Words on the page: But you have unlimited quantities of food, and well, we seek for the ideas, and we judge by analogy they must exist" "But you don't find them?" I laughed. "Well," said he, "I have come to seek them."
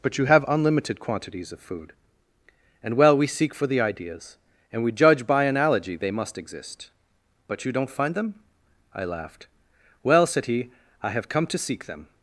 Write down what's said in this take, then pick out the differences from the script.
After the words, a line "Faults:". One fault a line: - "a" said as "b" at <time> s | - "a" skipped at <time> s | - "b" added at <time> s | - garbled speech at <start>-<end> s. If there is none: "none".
But you have unlimited quantities of food, and well, we seek for the ideas, and we judge by analogy they must exist" "But you don't find them?" I laughed. "Well," said he, "I have come to seek them."
Faults:
none